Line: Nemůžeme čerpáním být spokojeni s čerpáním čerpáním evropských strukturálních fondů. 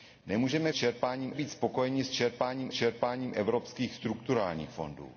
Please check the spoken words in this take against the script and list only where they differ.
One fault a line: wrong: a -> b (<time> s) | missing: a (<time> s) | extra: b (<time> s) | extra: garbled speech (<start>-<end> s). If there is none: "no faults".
no faults